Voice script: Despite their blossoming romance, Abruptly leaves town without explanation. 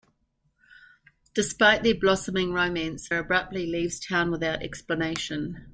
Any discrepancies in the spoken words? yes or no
no